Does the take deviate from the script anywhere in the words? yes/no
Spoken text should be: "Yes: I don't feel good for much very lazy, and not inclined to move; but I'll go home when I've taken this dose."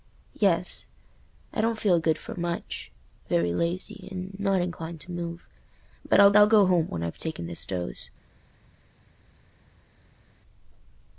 yes